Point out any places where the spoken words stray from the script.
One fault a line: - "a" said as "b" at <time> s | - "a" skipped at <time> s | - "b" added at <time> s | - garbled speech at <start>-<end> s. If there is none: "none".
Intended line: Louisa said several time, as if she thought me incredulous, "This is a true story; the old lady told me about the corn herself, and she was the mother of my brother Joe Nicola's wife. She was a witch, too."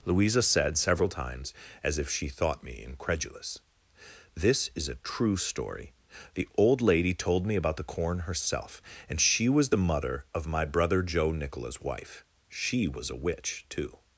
- "time" said as "times" at 1.1 s